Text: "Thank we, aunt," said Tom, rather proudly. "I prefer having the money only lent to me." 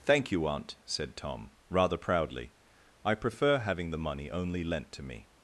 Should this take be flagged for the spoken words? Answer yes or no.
yes